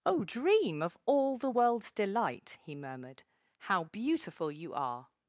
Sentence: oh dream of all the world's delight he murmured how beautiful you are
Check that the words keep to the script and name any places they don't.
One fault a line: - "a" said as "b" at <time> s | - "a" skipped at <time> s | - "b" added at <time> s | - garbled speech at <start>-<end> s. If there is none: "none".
none